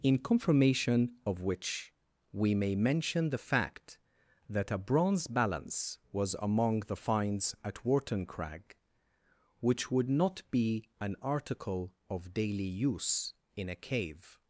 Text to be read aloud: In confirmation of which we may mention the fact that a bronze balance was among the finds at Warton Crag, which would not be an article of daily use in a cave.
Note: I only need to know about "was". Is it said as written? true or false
true